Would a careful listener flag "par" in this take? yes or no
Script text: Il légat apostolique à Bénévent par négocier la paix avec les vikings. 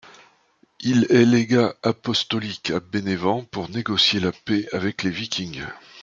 yes